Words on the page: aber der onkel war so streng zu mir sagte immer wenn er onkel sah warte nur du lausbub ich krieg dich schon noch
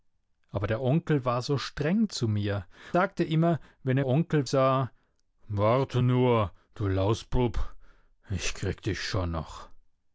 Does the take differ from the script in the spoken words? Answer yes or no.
no